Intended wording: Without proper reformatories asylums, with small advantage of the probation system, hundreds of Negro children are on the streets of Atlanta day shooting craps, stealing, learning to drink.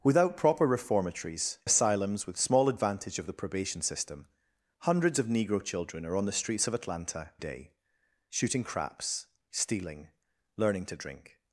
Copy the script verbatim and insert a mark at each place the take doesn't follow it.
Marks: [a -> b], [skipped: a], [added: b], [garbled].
Without proper reformatories asylums, with small advantage of the probation system, hundreds of Negro children are on the streets of Atlanta day shooting craps, stealing, learning to drink.